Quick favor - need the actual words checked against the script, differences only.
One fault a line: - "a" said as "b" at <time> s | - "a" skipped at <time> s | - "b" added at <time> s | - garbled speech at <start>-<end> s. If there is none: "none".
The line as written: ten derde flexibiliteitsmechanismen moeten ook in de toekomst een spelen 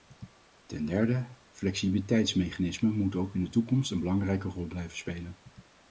- "belangrijke rol blijven" added at 4.0 s